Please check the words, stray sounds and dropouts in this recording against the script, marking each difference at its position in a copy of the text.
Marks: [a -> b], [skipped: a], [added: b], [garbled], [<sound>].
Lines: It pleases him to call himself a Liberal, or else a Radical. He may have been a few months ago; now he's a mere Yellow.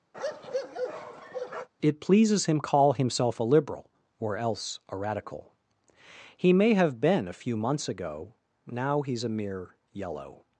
[bark] It pleases him [skipped: to] call himself a Liberal, or else a Radical. He may have been a few months ago; now he's a mere Yellow.